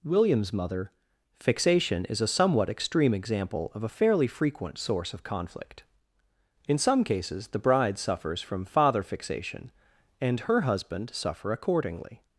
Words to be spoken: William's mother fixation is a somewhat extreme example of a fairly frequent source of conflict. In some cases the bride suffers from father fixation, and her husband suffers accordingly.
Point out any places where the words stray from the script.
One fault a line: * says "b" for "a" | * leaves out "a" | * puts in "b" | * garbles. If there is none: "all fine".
* says "suffer" for "suffers"